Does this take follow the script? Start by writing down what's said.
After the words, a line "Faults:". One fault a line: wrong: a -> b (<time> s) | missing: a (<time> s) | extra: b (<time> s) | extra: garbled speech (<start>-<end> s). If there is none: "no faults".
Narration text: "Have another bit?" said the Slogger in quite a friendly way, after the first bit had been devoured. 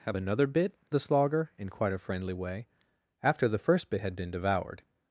"Have another bit?" the Slogger in quite a friendly way, after the first bit had been devoured.
Faults:
missing: said (0.7 s)